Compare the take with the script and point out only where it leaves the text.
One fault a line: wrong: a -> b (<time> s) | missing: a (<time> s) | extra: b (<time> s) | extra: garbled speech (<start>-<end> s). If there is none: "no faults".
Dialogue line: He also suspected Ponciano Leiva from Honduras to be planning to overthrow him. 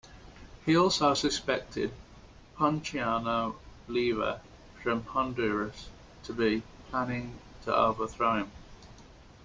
no faults